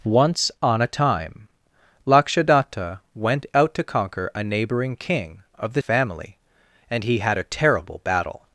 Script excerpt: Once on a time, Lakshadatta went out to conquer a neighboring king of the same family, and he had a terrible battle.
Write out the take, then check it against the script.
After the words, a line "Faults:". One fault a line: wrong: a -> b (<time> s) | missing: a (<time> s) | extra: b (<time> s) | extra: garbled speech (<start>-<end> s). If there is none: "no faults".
Once on a time, Lakshadatta went out to conquer a neighboring king of the family, and he had a terrible battle.
Faults:
missing: same (5.8 s)